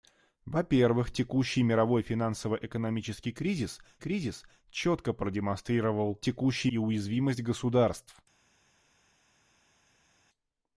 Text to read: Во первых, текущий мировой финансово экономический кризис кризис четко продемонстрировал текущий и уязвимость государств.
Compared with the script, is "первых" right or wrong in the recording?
right